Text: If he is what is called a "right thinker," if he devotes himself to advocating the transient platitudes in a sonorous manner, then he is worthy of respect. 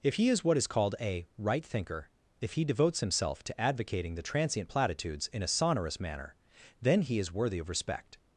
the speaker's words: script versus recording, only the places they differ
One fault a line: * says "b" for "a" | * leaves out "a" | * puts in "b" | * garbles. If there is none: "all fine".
all fine